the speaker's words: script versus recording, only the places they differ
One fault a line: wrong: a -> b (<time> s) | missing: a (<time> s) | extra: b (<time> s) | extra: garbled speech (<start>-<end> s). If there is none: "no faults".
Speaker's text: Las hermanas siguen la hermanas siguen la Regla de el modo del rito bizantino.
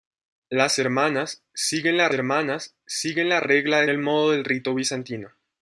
no faults